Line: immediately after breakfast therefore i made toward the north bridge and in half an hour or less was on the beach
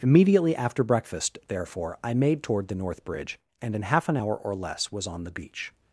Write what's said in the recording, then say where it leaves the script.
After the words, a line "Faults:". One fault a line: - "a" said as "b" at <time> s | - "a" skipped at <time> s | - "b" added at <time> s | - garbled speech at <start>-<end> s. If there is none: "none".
immediately after breakfast therefore i made toward the north bridge and in half an hour or less was on the beach
Faults:
none